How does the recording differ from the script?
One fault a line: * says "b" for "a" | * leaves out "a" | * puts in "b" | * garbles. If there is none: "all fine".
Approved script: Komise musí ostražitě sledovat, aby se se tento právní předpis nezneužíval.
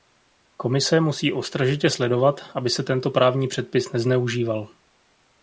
* leaves out "se"